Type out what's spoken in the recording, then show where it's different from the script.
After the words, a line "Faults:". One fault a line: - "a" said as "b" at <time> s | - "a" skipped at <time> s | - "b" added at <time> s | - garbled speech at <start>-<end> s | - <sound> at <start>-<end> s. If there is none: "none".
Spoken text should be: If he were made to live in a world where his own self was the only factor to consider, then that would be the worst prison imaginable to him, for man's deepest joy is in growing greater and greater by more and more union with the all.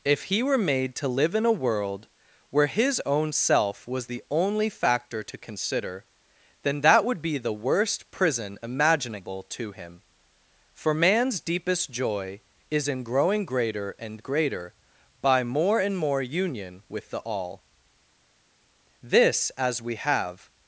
If he were made to live in a world where his own self was the only factor to consider, then that would be the worst prison imaginable to him, for man's deepest joy is in growing greater and greater by more and more union with the all. This, as we have
Faults:
- "This as we have" added at 19.0 s